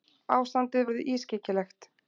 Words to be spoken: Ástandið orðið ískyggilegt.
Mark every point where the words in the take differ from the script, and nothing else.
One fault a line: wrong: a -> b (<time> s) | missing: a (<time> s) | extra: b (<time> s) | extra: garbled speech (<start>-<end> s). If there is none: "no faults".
no faults